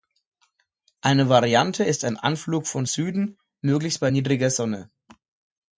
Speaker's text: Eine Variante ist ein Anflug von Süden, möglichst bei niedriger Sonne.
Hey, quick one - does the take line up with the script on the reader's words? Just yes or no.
yes